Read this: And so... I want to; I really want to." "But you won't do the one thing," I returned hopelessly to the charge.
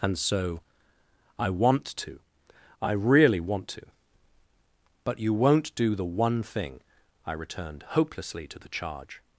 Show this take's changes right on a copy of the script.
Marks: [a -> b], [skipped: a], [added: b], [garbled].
And so... I want to; I really want to." "But you won't do the one thing," I returned hopelessly to the charge.